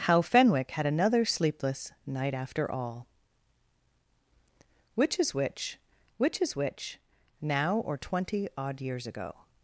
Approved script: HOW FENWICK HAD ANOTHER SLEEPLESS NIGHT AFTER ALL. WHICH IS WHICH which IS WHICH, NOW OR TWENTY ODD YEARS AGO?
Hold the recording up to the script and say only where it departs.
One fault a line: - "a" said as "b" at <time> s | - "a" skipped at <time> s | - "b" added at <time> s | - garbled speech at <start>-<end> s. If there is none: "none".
none